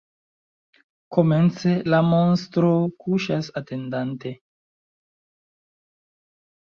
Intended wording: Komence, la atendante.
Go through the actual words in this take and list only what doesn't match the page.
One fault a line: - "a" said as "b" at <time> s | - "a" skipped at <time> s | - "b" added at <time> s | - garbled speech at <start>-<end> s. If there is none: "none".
- "monstro kuŝas" added at 2.1 s